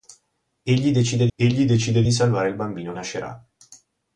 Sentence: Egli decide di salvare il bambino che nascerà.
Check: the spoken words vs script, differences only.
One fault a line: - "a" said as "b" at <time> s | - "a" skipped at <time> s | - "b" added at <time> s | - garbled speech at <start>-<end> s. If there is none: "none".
- "egli decide" added at 1.4 s
- "che" skipped at 2.9 s